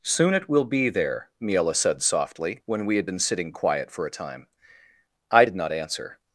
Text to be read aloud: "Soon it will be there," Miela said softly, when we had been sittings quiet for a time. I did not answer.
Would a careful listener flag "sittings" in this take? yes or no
yes